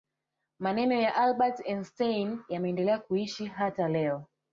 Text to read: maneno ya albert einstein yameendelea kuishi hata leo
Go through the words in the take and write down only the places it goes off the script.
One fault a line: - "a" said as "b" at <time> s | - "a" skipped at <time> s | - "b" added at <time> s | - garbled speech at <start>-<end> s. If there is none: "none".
none